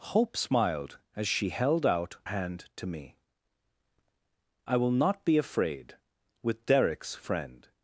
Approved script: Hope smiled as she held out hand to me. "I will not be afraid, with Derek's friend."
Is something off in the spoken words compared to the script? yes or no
no